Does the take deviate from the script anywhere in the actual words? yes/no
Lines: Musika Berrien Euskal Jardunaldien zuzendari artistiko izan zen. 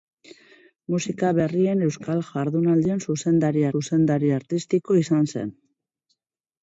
yes